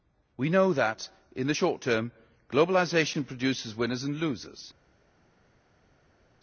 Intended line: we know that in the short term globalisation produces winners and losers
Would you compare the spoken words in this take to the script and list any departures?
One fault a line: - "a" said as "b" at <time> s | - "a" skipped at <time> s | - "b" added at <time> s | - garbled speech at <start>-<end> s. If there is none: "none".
none